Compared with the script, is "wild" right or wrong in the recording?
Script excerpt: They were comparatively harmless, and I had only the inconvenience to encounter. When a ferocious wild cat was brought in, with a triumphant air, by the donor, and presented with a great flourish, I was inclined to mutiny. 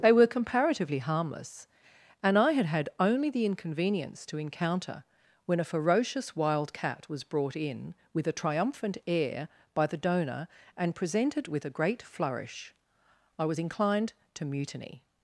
right